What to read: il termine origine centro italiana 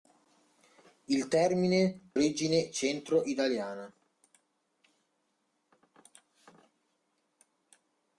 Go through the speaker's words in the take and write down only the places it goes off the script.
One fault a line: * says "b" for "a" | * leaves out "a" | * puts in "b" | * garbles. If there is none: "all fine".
all fine